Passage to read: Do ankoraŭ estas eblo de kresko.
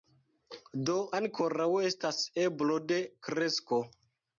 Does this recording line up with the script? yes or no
yes